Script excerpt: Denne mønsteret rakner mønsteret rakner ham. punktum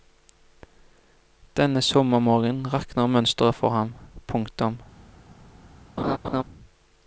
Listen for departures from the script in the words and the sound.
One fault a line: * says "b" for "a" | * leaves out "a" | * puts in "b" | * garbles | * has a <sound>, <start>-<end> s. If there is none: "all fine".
* says "sommermorgenen" for "mønsteret"
* says "for" for "rakner"
* has a laugh, 6.0-6.4 s